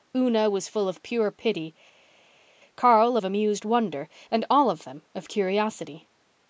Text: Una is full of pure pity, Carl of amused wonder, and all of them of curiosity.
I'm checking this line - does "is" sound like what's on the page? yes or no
no